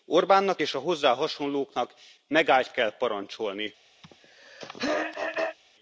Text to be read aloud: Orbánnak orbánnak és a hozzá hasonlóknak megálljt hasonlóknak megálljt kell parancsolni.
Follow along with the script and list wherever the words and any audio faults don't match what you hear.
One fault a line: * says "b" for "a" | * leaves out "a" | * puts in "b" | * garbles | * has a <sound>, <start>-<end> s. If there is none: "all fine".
* leaves out "orbánnak"
* leaves out "hasonlóknak megálljt"
* has a throat clearing, 4.0-5.6 s